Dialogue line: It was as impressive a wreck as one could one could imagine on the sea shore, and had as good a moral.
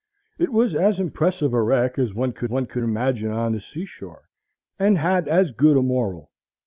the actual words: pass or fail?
pass